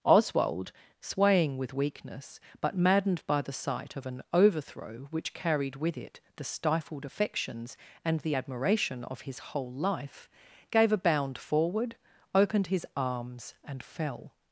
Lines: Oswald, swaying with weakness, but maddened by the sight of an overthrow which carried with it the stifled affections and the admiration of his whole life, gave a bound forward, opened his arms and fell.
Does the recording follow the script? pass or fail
pass